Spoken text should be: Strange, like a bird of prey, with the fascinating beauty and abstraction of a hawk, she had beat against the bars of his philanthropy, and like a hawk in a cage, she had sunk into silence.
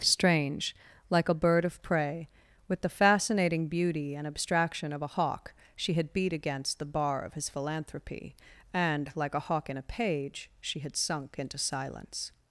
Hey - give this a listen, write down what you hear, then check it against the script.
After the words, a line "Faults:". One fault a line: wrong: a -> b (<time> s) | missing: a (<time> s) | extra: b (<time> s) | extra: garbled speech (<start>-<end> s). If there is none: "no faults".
Strange, like a bird of prey, with the fascinating beauty and abstraction of a hawk, she had beat against the bar of his philanthropy, and like a hawk in a page, she had sunk into silence.
Faults:
wrong: bars -> bar (6.8 s)
wrong: cage -> page (9.8 s)